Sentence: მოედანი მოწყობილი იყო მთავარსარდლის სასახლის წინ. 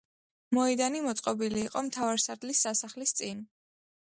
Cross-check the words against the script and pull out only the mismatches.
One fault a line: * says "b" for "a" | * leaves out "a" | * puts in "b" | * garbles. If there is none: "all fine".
all fine